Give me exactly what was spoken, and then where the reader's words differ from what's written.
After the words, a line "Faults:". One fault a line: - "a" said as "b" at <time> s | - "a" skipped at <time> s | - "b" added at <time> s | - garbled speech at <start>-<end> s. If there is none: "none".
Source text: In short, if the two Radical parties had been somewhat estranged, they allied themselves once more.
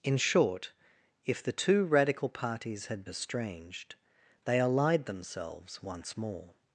In short, if the two Radical parties had estranged, they allied themselves once more.
Faults:
- "been somewhat" skipped at 3.0 s